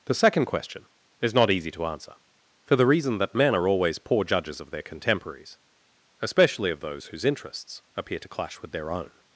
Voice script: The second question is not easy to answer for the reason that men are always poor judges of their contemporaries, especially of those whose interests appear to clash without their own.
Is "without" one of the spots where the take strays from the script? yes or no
yes